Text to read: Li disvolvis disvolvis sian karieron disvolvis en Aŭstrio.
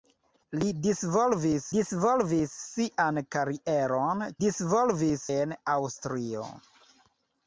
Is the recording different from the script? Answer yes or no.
no